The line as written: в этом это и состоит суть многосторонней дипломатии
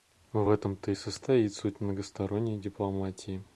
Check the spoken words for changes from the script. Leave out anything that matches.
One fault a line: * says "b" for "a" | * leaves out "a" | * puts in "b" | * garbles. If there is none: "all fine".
* says "то" for "это"